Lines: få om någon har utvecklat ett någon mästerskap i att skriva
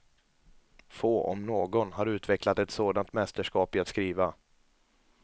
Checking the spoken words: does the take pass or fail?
fail